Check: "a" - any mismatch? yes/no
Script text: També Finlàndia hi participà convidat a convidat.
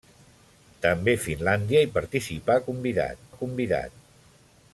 no